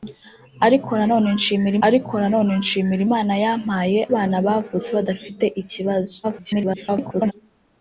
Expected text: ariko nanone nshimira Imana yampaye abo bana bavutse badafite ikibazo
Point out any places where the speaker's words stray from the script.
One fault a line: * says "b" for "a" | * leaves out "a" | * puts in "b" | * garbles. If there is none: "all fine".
* puts in "ariko nanone nshimira"
* leaves out "abo"
* garbles